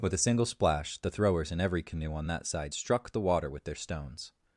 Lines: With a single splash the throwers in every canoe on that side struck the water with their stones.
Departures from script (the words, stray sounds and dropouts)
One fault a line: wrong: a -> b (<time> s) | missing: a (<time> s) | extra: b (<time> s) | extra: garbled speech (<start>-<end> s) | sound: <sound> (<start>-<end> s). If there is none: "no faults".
no faults